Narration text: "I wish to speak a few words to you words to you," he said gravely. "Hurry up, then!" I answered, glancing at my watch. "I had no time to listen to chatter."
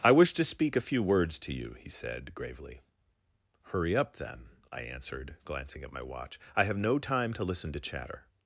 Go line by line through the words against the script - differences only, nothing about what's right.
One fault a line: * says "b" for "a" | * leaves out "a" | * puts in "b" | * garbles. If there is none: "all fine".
* leaves out "words to you"
* says "have" for "had"